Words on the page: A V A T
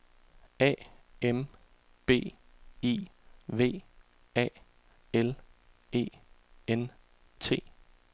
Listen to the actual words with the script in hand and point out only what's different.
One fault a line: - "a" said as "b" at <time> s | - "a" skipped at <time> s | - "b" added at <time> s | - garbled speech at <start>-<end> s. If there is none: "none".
- "M B I" added at 1.2 s
- "L E N" added at 5.1 s